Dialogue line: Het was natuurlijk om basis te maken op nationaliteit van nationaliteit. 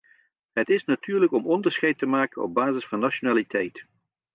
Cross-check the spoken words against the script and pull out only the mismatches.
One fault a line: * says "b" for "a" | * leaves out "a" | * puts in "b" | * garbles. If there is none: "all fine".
* says "is" for "was"
* says "onderscheid" for "basis"
* says "basis" for "nationaliteit"